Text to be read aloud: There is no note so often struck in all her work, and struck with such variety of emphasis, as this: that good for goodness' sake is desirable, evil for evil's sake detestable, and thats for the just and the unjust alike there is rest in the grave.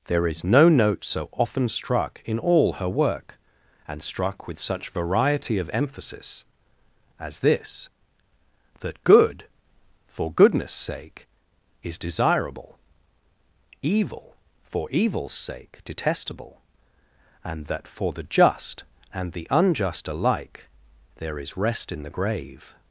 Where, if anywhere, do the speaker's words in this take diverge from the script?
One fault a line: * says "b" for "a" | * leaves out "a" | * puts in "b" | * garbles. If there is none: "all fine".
* says "that" for "thats"